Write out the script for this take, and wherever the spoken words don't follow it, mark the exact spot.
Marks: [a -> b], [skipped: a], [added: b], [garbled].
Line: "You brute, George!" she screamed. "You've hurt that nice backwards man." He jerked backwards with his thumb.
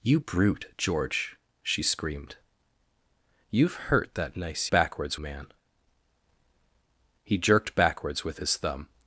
"You brute, George!" she screamed. "You've hurt that nice backwards man." He jerked backwards with his thumb.